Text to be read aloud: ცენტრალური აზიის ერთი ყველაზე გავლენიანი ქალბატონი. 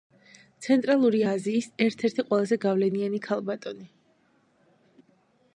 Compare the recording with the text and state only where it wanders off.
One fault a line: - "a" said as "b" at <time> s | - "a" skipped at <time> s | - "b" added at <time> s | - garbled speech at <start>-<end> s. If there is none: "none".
- "ერთ" added at 1.9 s